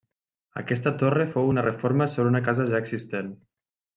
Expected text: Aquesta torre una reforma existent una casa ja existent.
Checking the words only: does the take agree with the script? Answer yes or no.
no